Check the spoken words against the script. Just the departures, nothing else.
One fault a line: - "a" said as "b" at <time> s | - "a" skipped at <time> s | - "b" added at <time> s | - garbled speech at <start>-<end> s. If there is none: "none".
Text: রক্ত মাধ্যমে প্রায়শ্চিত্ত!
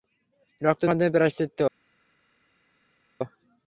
none